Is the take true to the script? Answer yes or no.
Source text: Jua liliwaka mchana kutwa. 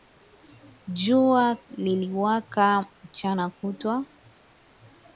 yes